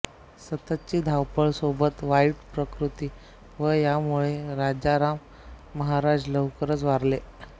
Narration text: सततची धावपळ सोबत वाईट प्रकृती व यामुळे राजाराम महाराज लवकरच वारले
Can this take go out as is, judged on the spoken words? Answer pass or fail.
pass